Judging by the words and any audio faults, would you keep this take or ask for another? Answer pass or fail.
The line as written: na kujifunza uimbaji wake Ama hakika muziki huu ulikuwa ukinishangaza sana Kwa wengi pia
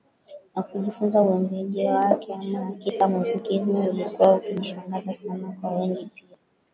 pass